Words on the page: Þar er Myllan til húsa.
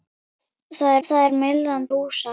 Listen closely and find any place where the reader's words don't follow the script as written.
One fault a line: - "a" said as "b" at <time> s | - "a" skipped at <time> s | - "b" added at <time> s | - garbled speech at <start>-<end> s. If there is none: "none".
- "þar" added at 1.1 s
- "til" skipped at 1.9 s